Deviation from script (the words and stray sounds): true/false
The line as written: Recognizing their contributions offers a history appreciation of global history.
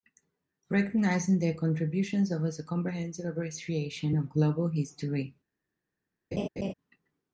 true